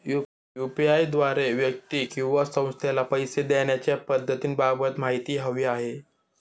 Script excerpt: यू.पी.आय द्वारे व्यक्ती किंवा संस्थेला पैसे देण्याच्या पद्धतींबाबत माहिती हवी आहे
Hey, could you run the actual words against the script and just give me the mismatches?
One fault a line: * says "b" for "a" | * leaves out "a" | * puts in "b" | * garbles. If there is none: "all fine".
all fine